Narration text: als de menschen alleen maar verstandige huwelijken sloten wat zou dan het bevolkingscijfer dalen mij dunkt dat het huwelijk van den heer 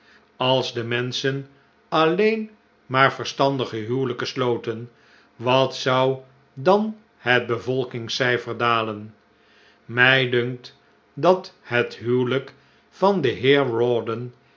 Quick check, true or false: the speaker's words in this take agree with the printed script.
true